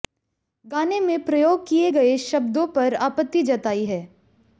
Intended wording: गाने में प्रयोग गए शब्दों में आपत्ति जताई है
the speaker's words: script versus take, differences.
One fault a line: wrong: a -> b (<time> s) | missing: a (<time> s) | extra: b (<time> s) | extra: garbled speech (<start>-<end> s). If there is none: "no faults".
extra: किए (1.7 s)
wrong: में -> पर (2.7 s)